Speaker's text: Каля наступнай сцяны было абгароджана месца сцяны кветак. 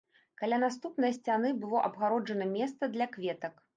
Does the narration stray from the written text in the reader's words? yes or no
yes